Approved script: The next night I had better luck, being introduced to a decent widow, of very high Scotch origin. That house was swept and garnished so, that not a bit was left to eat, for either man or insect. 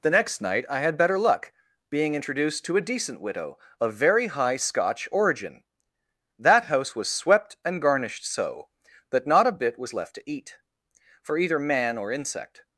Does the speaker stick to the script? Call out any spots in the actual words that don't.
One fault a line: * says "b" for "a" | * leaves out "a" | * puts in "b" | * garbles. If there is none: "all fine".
all fine